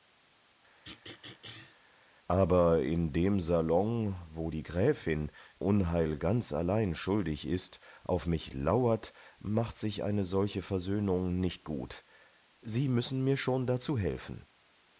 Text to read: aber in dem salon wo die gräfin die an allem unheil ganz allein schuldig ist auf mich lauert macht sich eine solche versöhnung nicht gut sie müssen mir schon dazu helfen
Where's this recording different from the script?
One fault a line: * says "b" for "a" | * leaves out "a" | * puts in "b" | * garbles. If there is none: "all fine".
* leaves out "die an allem"